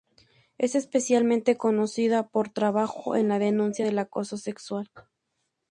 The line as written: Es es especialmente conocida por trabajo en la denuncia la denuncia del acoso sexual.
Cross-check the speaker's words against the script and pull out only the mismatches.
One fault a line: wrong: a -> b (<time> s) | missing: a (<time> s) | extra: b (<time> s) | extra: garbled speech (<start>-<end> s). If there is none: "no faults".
missing: es (0.7 s)
missing: la denuncia (3.9 s)